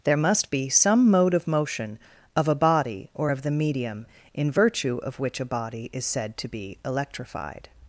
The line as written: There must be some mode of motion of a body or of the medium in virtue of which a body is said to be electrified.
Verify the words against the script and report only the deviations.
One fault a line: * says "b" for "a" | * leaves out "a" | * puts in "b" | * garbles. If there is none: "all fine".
all fine